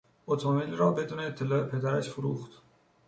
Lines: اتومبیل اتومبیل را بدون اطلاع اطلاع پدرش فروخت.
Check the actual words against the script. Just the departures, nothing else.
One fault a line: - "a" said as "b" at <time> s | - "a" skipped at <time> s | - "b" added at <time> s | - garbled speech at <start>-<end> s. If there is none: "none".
- "اتومبیل" skipped at 0.8 s
- "اطلاع" skipped at 1.6 s